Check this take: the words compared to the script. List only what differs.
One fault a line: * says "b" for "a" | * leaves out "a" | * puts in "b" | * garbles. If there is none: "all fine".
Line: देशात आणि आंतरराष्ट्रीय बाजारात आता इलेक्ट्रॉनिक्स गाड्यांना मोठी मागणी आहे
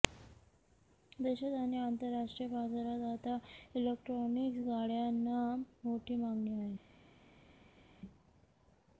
all fine